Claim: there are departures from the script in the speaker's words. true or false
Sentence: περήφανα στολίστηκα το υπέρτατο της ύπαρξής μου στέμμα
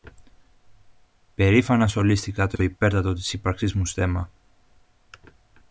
true